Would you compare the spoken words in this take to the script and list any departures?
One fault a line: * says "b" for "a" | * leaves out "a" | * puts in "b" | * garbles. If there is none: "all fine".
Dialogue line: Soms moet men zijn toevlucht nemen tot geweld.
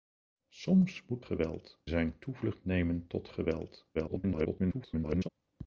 * says "geweld" for "men"
* garbles